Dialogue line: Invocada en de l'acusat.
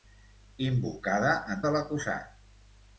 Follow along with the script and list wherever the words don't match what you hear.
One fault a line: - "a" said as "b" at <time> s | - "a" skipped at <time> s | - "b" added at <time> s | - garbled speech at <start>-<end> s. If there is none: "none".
none